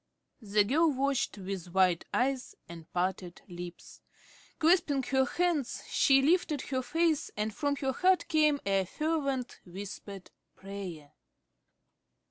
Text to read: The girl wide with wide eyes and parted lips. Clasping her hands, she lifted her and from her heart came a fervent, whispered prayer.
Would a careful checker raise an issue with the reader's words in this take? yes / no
yes